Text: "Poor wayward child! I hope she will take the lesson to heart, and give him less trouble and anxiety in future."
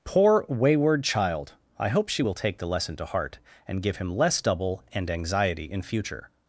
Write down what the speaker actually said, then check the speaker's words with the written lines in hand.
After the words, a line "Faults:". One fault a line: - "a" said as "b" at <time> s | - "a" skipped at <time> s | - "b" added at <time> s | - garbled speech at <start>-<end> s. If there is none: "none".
"Poor wayward child! I hope she will take the lesson to heart, and give him less double and anxiety in future."
Faults:
- "trouble" said as "double" at 4.4 s